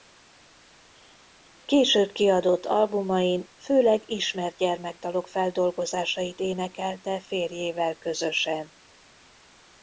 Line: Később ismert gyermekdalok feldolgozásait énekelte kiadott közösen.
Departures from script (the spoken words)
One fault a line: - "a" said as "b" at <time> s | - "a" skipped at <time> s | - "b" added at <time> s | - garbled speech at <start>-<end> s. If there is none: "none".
- "kiadott albumain főleg" added at 2.1 s
- "kiadott" said as "férjével" at 7.2 s